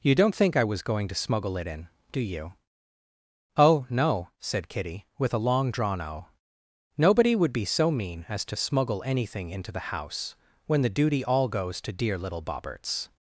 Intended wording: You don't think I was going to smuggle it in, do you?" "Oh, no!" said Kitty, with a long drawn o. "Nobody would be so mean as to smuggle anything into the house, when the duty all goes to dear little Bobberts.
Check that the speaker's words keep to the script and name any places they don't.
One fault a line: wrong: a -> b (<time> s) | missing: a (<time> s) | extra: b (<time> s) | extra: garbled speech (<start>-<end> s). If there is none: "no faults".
no faults